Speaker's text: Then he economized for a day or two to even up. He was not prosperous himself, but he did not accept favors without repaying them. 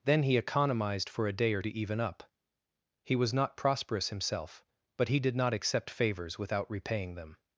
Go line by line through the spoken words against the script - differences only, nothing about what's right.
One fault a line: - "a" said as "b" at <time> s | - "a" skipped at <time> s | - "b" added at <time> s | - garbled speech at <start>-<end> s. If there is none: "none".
- "two" skipped at 1.6 s